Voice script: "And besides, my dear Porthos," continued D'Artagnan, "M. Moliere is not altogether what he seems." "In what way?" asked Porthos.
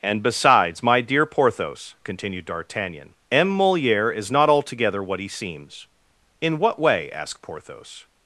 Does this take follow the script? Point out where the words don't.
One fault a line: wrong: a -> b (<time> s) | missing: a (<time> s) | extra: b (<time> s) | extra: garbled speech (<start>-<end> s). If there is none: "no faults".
no faults